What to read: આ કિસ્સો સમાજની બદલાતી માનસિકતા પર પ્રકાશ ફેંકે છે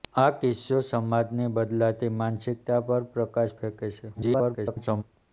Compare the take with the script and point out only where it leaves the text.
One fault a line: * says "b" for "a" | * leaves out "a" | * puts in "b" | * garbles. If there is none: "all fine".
* garbles